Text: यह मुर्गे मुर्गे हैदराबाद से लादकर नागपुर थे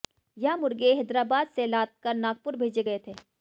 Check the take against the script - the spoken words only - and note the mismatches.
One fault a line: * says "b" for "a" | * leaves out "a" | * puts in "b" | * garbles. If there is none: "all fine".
* leaves out "मुर्गे"
* puts in "भेजे गए"